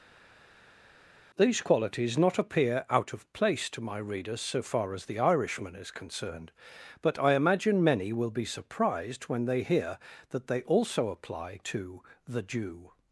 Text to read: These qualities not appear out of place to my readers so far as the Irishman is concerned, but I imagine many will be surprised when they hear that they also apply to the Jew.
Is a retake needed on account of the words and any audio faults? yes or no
no